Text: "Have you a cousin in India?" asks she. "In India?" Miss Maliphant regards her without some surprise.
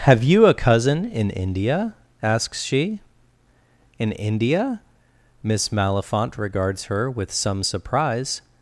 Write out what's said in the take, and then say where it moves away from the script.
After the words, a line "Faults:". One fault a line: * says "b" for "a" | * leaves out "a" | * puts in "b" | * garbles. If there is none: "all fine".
"Have you a cousin in India?" asks she. "In India?" Miss Maliphant regards her with some surprise.
Faults:
* says "with" for "without"